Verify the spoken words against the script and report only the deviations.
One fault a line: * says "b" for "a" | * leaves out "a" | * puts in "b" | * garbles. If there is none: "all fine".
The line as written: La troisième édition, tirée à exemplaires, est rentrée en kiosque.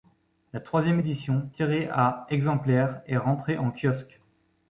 all fine